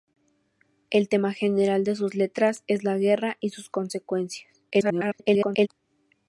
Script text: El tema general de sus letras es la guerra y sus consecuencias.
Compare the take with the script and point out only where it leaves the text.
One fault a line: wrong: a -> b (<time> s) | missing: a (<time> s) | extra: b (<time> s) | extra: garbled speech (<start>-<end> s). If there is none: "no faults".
extra: garbled speech (4.7-5.7 s)